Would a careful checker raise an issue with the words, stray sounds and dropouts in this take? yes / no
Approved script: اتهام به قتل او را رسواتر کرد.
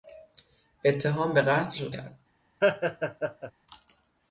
yes